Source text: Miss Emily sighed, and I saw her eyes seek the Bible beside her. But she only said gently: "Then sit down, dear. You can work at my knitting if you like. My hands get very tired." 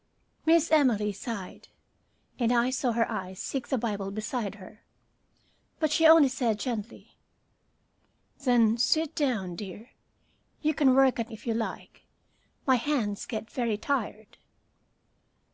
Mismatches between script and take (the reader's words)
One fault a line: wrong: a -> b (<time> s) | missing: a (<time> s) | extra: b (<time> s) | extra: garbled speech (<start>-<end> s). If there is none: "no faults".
missing: my knitting (11.3 s)